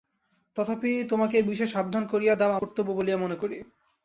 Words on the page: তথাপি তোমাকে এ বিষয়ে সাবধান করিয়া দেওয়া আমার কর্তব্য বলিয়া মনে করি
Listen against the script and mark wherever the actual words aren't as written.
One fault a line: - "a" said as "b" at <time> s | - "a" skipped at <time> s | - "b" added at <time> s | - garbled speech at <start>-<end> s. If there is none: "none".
- "আমার" skipped at 2.6 s